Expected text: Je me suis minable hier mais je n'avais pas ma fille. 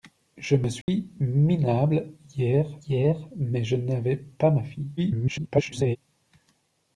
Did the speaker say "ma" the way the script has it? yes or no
yes